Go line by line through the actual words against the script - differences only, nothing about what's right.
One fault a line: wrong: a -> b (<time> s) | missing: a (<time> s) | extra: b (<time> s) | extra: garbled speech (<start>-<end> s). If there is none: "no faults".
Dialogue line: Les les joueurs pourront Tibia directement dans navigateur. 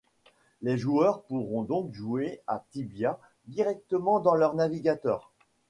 missing: les (0.8 s)
extra: donc jouer à (1.6 s)
extra: leur (4.3 s)